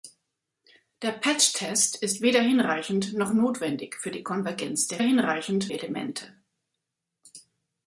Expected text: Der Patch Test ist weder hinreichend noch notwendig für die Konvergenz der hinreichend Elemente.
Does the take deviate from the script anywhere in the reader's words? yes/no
no